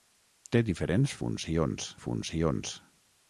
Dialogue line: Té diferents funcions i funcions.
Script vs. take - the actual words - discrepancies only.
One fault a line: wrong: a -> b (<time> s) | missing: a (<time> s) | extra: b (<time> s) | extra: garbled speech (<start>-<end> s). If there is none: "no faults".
no faults